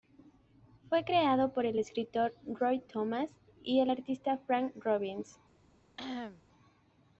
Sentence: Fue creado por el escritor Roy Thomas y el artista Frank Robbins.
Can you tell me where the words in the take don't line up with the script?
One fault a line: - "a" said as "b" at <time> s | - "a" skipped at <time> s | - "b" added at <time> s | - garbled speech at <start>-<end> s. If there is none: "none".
none